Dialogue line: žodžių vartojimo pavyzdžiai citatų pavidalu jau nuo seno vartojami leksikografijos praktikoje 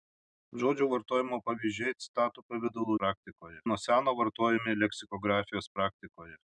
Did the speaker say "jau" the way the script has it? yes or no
no